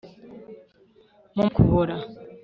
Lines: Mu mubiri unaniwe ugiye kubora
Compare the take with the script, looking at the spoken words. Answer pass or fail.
fail